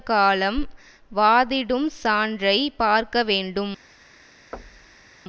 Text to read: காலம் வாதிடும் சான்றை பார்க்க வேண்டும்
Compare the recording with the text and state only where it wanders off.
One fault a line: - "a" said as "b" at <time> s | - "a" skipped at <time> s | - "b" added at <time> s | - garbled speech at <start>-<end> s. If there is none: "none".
none